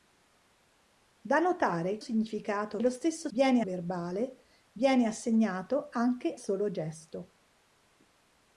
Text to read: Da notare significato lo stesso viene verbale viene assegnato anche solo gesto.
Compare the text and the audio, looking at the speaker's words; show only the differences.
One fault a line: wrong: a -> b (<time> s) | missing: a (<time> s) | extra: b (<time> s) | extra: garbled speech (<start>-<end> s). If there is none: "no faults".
no faults